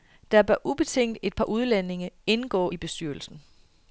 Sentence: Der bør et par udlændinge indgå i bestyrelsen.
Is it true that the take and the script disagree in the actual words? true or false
true